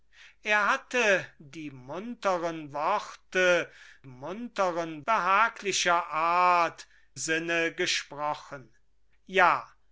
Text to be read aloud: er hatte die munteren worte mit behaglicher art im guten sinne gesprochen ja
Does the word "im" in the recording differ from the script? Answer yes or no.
yes